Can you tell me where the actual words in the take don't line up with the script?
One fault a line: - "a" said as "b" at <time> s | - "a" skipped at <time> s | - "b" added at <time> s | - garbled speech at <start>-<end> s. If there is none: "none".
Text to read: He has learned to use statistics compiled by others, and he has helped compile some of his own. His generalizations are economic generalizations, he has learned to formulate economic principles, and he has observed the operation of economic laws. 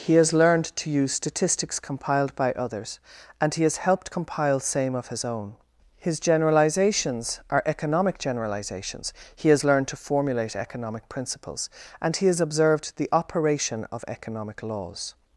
- "some" said as "same" at 4.6 s